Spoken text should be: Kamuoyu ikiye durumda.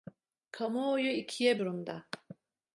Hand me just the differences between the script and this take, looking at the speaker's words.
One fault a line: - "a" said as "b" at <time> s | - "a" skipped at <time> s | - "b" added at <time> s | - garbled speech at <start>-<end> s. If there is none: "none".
none